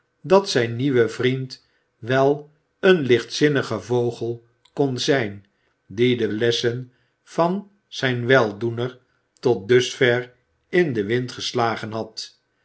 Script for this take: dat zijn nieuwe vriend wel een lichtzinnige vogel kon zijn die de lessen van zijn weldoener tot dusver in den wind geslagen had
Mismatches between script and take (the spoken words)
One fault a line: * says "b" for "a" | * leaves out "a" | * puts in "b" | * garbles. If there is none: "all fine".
all fine